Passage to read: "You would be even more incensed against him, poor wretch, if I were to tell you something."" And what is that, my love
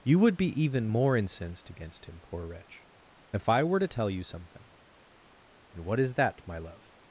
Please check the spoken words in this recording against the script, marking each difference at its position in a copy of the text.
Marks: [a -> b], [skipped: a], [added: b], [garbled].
"You would be even more incensed against him, poor wretch, if I were to tell you something."" And what is that, my love